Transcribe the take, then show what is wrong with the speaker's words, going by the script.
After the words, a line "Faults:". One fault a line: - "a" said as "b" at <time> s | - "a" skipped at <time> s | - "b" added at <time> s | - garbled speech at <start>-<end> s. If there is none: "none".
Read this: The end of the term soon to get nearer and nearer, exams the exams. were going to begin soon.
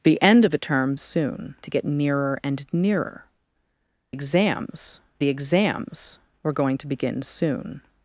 The end of the term soon to get nearer and nearer, exams the exams. were going to begin soon.
Faults:
none